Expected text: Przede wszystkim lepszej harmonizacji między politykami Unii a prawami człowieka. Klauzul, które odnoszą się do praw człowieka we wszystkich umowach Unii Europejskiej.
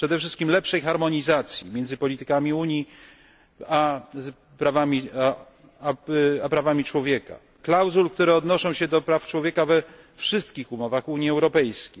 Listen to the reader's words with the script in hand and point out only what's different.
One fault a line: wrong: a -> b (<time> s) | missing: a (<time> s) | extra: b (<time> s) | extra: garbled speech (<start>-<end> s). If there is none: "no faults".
no faults